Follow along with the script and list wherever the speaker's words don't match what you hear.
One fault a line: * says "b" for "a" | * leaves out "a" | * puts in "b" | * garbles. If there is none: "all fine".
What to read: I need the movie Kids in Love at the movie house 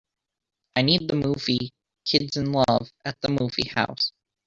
all fine